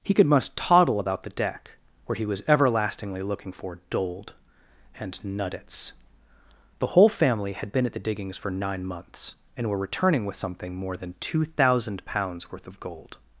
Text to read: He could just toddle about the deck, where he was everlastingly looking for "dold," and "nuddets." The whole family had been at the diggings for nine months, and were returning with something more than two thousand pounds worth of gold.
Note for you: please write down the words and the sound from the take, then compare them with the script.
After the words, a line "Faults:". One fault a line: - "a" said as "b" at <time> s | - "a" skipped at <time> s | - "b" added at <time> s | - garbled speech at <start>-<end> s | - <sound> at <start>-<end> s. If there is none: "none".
He could must toddle about the deck, where he was everlastingly looking for "dold," and "nuddets." The whole family had been at the diggings for nine months, and were returning with something more than two thousand pounds worth of gold.
Faults:
- "just" said as "must" at 0.2 s